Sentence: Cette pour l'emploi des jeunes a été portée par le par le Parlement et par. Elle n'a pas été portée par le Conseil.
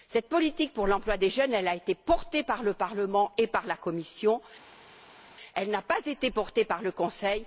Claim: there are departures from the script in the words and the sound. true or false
true